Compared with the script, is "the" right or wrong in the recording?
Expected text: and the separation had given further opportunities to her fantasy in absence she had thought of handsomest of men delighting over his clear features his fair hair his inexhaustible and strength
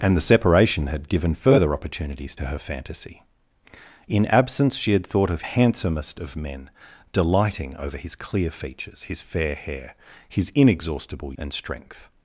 right